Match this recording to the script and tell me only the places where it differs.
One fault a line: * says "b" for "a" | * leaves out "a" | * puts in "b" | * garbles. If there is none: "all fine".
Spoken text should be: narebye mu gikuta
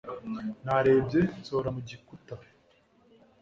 * puts in "nsohora"